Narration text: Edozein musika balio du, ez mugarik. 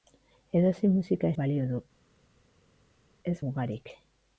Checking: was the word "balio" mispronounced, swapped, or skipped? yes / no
no